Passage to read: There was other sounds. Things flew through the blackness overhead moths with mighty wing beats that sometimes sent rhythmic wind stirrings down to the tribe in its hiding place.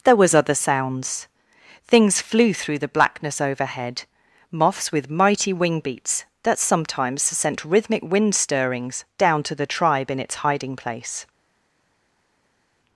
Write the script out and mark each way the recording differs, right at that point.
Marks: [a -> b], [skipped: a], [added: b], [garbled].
There was other sounds. Things flew through the blackness overhead moths with mighty wing beats that sometimes sent rhythmic wind stirrings down to the tribe in its hiding place.